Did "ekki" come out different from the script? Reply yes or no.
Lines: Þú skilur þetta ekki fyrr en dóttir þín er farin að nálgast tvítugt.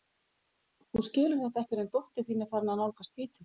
yes